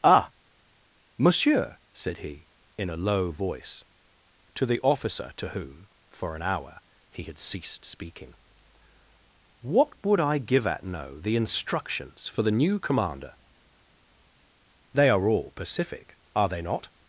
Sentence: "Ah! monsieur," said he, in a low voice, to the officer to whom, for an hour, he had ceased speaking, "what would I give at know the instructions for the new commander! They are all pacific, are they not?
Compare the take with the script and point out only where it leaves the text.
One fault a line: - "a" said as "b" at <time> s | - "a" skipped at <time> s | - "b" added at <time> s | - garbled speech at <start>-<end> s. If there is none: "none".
none